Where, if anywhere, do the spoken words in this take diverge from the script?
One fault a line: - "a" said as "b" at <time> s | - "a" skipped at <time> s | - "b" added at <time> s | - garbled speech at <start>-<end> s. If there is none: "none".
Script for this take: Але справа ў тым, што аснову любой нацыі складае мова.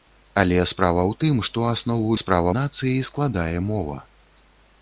- "любой" said as "справа" at 2.2 s